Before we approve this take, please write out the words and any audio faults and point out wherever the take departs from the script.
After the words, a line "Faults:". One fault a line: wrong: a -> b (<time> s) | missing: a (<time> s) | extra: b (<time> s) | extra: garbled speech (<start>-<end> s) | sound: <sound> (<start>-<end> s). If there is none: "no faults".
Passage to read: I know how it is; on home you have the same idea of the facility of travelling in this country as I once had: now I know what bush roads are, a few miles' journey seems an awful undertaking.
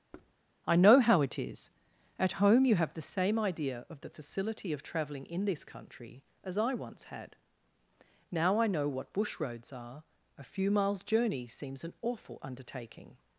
I know how it is; at home you have the same idea of the facility of travelling in this country as I once had: now I know what bush roads are, a few miles' journey seems an awful undertaking.
Faults:
sound: thud (0.1-0.3 s)
wrong: on -> at (2.2 s)